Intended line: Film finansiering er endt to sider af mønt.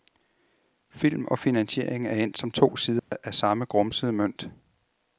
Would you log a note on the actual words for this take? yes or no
yes